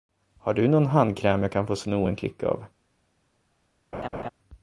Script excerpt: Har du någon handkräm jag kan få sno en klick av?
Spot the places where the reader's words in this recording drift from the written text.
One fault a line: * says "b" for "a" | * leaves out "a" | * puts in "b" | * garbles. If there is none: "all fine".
all fine